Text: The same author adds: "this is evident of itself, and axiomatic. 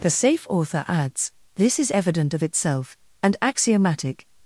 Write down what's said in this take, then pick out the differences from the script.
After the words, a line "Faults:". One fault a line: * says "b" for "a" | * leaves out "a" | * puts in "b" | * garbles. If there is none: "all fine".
The safe author adds: "this is evident of itself, and axiomatic.
Faults:
* says "safe" for "same"